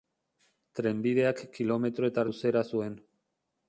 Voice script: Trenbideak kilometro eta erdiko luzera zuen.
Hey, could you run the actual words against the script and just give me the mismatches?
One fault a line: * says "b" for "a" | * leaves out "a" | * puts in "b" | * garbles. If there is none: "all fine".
* leaves out "erdiko"